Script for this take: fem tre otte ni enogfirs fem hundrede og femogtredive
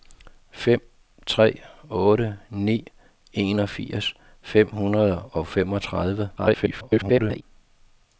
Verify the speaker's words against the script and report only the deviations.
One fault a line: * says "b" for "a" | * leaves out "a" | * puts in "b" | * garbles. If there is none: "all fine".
* garbles